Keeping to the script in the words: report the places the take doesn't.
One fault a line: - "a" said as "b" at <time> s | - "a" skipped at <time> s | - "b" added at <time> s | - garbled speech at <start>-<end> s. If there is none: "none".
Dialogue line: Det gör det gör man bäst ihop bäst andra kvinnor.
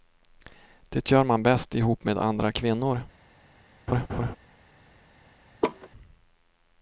- "det gör" skipped at 1.2 s
- "bäst" said as "med" at 2.0 s